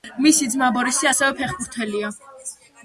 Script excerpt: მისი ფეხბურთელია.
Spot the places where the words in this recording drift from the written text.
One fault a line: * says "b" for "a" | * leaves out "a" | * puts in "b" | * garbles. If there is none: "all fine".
* puts in "ძმა ბორისი ასევე"